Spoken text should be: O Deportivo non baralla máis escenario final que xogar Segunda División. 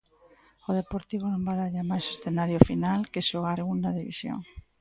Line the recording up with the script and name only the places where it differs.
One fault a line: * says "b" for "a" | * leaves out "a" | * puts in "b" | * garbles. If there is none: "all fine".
all fine